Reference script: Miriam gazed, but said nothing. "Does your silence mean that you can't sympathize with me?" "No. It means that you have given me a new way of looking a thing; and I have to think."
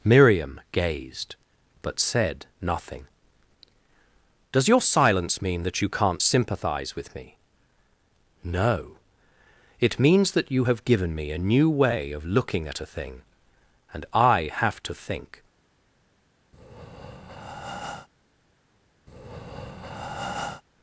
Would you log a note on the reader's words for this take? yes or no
yes